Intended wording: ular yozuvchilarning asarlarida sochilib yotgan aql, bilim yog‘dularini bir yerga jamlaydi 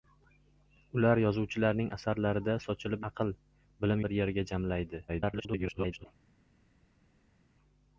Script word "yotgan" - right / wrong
wrong